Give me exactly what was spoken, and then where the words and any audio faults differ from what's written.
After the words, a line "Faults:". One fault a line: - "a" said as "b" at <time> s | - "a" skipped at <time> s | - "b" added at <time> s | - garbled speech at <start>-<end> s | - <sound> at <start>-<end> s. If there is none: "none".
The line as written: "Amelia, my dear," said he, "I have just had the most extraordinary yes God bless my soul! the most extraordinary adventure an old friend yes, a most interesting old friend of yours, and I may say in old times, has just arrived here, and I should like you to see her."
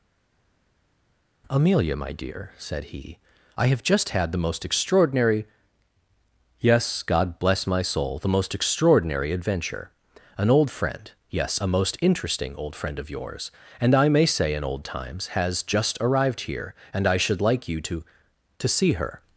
"Amelia, my dear," said he, "I have just had the most extraordinary yes God bless my soul! the most extraordinary adventure an old friend yes, a most interesting old friend of yours, and I may say in old times, has just arrived here, and I should like you to to see her."
Faults:
- "to" added at 18.6 s